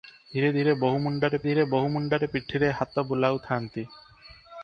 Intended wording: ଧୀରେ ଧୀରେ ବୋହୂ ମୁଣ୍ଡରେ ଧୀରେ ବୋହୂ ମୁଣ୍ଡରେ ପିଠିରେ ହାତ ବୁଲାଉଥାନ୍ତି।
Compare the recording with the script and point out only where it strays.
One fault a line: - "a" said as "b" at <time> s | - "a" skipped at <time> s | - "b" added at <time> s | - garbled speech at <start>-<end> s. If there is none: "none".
none